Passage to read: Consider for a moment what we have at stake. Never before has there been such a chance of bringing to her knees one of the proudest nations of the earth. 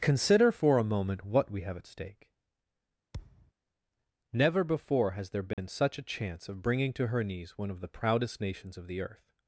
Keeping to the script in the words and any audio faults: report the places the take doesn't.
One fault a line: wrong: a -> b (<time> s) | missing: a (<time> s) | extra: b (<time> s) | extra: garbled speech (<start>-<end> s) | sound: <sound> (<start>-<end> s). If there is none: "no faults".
sound: thud (3.1-3.5 s)
sound: dropout (5.5-5.6 s)